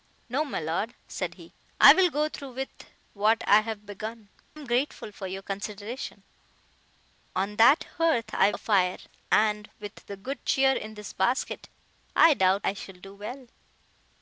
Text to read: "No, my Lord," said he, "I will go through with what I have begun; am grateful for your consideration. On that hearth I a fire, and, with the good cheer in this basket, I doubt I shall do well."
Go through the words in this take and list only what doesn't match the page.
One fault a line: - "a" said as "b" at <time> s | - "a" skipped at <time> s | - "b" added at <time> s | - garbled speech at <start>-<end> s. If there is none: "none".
none